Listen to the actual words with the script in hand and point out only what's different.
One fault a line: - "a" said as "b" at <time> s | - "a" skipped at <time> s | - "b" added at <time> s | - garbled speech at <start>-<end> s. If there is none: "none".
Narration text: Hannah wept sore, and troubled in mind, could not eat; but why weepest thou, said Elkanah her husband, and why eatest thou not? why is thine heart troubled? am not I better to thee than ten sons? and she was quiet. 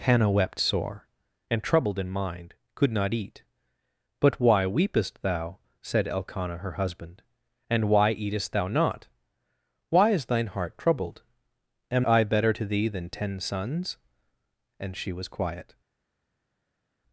- "not" skipped at 12.0 s